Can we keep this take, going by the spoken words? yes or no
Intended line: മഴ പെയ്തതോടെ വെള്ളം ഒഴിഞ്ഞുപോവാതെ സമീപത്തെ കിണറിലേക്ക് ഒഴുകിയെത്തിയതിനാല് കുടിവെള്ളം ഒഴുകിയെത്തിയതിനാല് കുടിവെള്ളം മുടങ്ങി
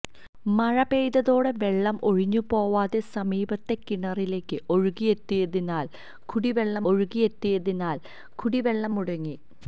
yes